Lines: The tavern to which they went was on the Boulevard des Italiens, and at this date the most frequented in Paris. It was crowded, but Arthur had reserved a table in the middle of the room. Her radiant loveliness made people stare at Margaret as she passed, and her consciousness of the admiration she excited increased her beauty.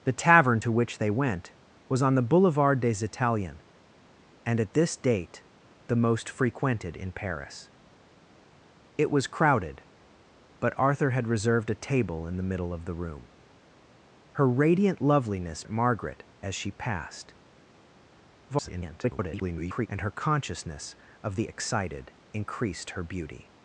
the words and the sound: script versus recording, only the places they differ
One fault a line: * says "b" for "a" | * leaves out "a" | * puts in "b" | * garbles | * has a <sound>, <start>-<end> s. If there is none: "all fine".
* leaves out "made people stare"
* garbles
* leaves out "admiration she"